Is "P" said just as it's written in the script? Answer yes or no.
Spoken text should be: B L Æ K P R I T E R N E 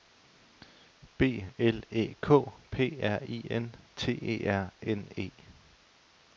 yes